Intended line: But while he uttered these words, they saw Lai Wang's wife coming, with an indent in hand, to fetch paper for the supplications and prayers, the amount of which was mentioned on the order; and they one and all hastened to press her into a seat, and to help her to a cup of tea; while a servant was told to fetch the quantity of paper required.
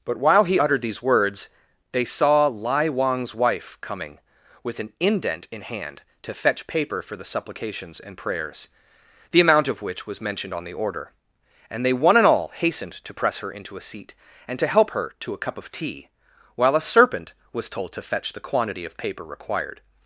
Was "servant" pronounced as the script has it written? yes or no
no